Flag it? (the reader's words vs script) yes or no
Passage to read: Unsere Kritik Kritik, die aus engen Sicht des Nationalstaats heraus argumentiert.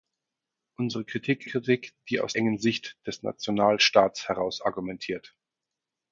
no